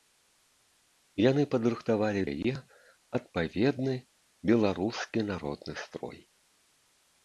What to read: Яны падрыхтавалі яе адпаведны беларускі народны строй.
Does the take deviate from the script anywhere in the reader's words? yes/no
no